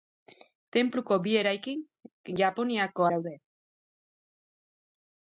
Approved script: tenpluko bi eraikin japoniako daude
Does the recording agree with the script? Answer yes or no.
yes